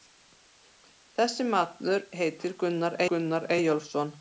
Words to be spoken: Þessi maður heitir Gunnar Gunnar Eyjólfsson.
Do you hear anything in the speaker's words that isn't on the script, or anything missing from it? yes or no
no